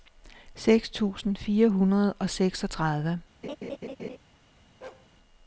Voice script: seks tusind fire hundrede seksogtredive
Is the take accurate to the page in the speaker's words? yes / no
no